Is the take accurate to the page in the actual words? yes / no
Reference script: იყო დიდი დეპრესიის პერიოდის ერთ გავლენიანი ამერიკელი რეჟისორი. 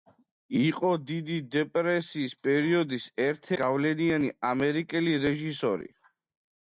yes